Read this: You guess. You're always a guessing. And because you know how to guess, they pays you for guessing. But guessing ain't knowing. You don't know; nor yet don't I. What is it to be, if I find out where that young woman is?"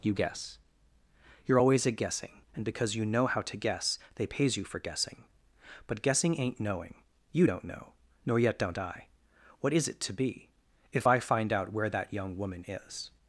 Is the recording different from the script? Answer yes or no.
no